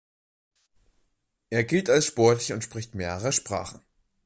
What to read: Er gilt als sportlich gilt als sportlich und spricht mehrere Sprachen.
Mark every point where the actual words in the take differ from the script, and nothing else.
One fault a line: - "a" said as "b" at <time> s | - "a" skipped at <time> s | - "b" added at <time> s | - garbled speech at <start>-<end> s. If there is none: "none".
- "gilt als sportlich" skipped at 2.5 s